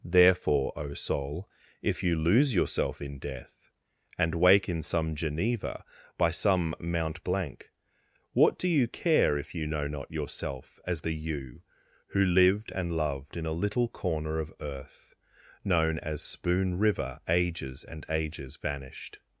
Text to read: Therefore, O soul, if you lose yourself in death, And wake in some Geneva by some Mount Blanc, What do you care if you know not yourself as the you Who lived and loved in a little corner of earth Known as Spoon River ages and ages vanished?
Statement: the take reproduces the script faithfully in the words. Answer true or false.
true